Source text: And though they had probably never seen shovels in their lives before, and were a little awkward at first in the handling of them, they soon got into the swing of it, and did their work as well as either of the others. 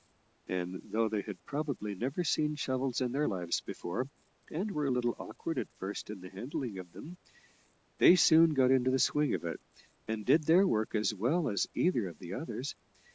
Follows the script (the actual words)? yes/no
yes